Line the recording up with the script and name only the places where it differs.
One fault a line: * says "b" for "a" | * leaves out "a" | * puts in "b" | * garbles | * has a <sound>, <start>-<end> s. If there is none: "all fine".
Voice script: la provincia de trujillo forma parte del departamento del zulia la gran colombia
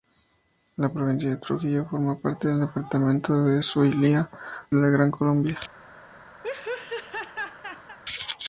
* has a laugh, 6.4-8.0 s